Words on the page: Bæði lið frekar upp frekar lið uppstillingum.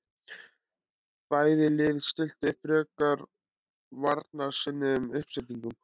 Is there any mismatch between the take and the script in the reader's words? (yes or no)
yes